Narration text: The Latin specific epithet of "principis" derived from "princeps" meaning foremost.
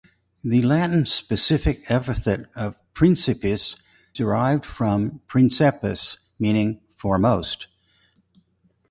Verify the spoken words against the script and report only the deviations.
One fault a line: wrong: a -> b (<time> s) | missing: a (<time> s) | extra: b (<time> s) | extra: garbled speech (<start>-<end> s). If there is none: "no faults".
no faults